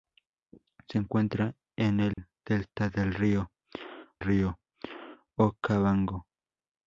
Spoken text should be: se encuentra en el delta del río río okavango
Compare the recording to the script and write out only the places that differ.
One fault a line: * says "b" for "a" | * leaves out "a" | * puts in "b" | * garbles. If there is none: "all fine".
all fine